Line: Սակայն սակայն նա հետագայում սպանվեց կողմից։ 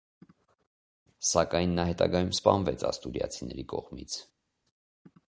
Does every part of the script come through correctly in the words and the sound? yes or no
no